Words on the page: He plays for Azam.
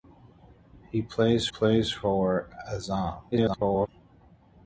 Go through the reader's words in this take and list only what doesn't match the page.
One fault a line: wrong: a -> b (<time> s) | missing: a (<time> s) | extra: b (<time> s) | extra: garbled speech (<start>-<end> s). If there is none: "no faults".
extra: plays (1.5 s)
extra: garbled speech (3.3-3.9 s)